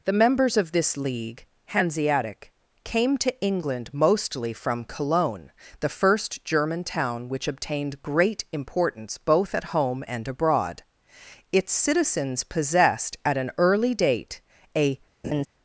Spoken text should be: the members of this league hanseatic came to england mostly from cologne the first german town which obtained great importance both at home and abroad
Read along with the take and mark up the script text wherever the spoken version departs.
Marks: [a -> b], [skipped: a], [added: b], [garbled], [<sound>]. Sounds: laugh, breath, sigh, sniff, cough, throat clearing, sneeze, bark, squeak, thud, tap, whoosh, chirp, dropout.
the members of this league hanseatic came to england mostly from cologne the first german town which obtained great importance both at home and abroad [added: its citizens possessed at an early date a] [laugh]